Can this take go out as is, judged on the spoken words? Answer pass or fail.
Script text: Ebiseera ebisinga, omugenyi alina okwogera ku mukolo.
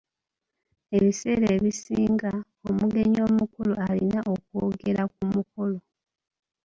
fail